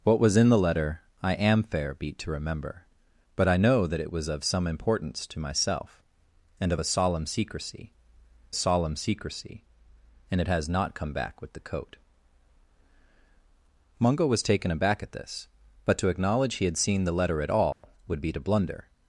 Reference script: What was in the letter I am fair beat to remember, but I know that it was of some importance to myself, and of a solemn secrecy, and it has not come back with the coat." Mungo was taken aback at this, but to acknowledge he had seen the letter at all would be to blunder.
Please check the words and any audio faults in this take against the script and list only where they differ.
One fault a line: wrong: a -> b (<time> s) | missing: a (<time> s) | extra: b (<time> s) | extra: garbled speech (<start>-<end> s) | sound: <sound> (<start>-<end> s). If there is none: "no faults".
extra: solemn secrecy (8.5 s)
sound: dropout (17.7-17.8 s)